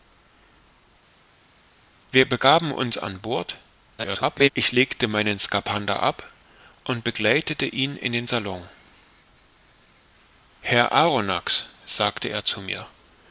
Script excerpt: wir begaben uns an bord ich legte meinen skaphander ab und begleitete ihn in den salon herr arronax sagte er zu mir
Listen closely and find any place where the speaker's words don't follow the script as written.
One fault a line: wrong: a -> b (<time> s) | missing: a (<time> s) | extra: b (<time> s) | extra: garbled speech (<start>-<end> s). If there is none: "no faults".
extra: garbled speech (4.0-4.5 s)